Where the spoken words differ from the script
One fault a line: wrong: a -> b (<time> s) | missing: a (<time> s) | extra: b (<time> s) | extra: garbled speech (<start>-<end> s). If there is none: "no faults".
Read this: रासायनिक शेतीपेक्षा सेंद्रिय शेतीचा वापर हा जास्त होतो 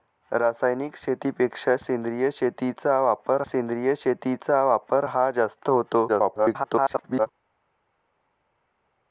extra: सेंद्रिय शेतीचा वापर (3.4 s)
extra: garbled speech (6.1-7.3 s)